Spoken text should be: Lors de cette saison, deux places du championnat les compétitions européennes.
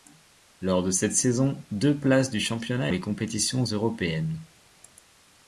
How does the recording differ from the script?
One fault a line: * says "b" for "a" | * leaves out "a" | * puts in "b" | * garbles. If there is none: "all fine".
all fine